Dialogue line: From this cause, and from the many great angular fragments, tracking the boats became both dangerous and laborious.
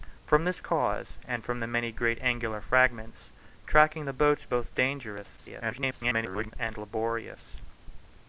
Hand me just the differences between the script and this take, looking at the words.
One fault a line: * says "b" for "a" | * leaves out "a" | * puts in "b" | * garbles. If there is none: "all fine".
* leaves out "became"
* garbles